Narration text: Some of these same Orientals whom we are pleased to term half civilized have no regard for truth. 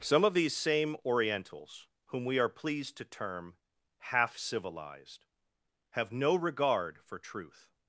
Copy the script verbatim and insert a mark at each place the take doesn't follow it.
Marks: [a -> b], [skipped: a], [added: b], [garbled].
Some of these same Orientals whom we are pleased to term half civilized have no regard for truth.